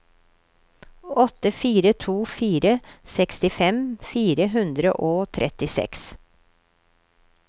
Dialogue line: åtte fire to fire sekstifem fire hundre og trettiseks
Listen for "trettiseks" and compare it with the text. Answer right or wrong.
right